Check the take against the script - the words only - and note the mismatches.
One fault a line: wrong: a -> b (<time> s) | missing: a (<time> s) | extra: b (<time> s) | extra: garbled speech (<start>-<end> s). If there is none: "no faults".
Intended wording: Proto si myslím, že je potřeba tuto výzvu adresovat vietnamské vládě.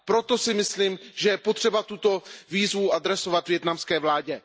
no faults